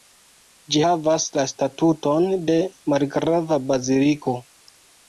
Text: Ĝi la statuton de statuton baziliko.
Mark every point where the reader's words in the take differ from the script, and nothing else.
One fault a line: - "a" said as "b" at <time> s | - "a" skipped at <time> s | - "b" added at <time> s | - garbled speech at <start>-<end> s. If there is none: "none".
- "havas" added at 0.8 s
- "statuton" said as "malgrava" at 3.0 s